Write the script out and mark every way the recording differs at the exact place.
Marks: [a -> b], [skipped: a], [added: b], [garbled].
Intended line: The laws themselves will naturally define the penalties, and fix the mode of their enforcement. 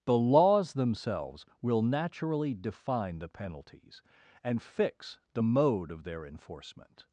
The laws themselves will naturally define the penalties, and fix the mode of their enforcement.